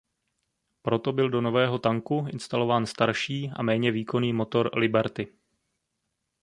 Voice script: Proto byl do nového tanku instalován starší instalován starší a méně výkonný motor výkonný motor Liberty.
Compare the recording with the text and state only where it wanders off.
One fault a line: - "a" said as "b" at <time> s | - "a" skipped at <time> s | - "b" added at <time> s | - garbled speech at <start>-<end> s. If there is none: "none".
- "instalován starší" skipped at 3.5 s
- "výkonný motor" skipped at 4.7 s